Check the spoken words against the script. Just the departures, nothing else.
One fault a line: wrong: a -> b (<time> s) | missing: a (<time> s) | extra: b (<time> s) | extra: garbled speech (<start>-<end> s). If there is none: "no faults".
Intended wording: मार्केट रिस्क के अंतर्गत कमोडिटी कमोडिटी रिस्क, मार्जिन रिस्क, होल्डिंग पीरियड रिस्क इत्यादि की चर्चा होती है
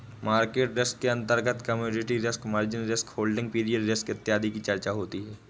missing: कमोडिटी (2.2 s)